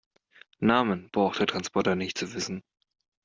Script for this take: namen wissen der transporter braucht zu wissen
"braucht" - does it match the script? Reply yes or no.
no